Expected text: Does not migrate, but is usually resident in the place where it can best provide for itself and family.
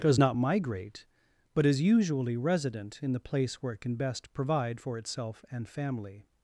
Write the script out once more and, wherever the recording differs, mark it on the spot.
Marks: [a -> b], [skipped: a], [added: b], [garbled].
Does not migrate, but is usually resident in the place where it can best provide for itself and family.